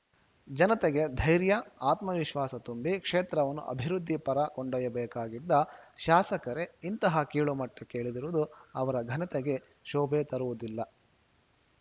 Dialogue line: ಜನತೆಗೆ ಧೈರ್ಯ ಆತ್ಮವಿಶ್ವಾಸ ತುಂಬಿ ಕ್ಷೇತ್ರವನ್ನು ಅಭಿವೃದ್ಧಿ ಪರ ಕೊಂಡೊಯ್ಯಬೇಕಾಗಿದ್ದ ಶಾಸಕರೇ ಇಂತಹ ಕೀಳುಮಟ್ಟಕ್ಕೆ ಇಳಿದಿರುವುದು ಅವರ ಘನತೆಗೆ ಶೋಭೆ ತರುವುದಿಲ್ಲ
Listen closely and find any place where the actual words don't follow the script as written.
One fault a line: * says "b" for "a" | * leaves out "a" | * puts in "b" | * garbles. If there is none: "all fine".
all fine